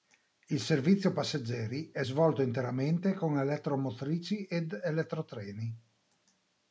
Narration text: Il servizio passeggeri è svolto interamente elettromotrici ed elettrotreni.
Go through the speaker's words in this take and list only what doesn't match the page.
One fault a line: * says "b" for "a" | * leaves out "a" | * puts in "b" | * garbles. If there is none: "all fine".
* puts in "con"